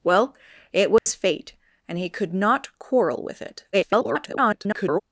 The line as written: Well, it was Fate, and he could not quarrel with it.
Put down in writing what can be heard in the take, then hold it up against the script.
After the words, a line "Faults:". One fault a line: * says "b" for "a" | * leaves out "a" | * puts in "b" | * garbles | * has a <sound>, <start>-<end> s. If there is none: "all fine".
Well, it was Fate, and he could not quarrel with it. [garbled]
Faults:
* has a dropout, 1.0-1.1 s
* garbles